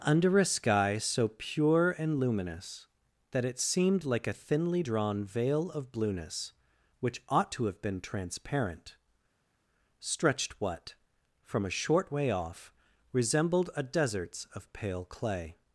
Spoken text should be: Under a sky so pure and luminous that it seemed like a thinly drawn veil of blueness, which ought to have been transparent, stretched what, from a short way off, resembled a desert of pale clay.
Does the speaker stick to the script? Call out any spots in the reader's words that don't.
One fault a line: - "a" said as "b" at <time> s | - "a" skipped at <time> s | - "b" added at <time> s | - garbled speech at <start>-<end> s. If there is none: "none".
- "desert" said as "deserts" at 13.8 s